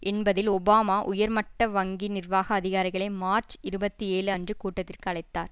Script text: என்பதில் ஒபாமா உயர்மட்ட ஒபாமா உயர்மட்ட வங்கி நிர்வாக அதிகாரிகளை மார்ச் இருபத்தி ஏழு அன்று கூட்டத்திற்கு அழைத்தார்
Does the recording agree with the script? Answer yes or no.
no